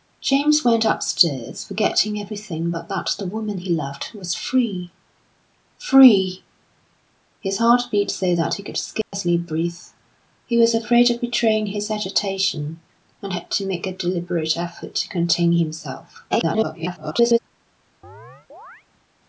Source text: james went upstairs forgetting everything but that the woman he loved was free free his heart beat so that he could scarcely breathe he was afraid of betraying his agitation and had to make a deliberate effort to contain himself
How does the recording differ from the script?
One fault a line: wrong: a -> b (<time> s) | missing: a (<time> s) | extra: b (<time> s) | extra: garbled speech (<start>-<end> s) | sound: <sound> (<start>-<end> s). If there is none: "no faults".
sound: dropout (9.0-9.1 s)
extra: garbled speech (16.3-17.4 s)
sound: chirp (18.0-18.8 s)